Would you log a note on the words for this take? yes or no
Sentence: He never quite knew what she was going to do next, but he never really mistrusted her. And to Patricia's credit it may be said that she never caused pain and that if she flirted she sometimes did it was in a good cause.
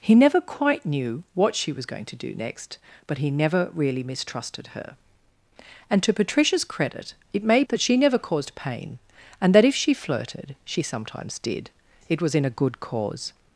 yes